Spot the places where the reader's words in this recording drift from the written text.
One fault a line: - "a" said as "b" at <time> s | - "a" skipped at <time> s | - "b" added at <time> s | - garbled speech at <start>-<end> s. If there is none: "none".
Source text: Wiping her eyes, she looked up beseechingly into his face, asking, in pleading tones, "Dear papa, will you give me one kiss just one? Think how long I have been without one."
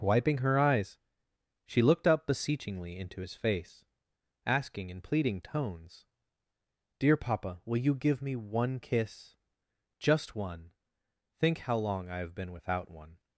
none